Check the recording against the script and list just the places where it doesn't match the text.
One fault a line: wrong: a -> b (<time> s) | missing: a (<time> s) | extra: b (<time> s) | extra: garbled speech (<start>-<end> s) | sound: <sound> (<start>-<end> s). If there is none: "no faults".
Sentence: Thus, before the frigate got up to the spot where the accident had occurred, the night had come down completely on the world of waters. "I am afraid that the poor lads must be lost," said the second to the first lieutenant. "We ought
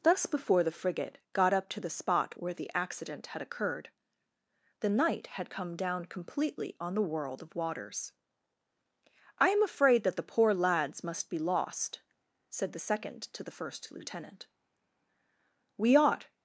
no faults